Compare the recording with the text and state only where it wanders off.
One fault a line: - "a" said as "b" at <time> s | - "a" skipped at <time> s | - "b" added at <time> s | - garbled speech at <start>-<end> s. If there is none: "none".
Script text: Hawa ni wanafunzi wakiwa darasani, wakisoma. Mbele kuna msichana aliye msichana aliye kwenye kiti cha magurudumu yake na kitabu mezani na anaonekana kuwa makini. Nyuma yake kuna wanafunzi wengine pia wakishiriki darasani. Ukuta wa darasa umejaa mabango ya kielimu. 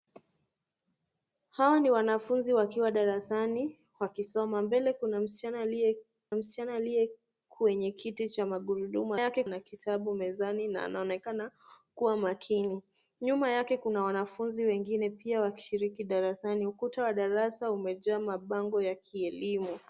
none